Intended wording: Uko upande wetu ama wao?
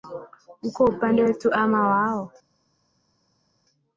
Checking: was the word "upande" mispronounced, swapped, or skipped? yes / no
no